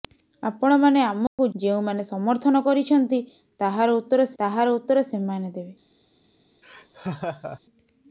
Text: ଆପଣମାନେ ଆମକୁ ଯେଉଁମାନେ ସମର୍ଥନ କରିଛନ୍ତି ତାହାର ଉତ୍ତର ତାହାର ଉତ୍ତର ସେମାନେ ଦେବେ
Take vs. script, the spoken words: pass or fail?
pass